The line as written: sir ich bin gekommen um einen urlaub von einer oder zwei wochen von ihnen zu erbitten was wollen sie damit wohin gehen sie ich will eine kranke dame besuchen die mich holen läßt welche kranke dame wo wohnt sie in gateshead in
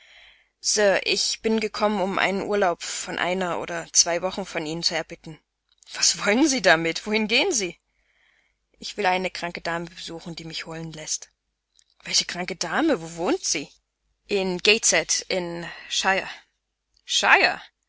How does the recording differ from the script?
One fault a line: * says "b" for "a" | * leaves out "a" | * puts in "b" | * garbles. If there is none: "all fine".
all fine